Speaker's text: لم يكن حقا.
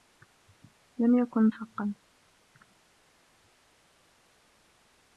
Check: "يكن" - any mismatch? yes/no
no